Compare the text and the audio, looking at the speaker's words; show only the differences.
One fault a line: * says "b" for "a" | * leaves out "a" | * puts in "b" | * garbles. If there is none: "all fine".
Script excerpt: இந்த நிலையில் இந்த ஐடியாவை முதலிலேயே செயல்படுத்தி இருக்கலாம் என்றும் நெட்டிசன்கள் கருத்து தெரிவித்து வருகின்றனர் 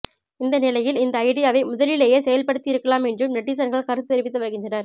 all fine